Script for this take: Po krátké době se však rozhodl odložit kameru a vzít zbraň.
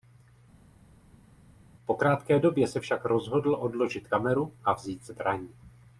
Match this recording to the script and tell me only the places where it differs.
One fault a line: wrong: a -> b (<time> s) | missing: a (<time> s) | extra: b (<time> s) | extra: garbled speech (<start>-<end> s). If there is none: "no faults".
no faults